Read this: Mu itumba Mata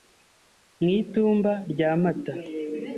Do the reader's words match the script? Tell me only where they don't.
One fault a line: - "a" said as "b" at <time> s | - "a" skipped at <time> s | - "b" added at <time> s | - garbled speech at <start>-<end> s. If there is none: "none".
- "rya" added at 1.7 s